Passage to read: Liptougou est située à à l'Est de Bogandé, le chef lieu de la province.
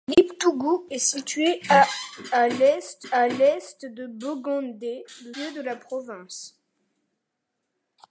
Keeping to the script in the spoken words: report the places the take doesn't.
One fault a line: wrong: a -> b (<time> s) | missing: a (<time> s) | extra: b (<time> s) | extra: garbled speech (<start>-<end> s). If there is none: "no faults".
extra: à l'Est (3.1 s)
missing: chef (5.3 s)